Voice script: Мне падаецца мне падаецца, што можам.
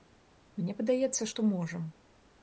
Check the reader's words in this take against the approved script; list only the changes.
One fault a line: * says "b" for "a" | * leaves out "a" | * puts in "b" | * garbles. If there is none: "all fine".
* leaves out "мне падаецца"